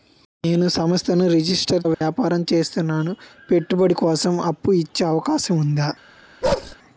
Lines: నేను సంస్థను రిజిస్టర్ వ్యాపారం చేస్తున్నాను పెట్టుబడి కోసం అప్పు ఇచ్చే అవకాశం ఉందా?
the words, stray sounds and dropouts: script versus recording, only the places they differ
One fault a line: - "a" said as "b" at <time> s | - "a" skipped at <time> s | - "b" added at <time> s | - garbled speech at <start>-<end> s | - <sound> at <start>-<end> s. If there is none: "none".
- dropout at 1.9-2.0 s
- bark at 6.4-6.8 s